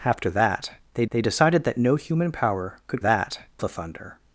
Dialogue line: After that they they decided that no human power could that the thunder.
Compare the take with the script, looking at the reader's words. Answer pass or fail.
pass